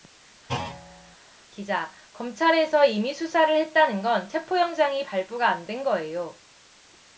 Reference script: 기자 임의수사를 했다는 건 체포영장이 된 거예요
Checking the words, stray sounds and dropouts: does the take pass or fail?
fail